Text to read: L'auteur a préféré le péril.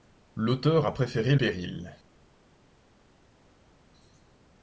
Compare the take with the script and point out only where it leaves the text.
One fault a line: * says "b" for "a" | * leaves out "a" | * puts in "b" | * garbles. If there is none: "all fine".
* leaves out "le"